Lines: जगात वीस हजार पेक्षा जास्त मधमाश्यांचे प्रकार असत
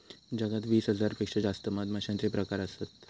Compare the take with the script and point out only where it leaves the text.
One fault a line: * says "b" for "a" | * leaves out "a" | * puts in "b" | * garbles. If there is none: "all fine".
all fine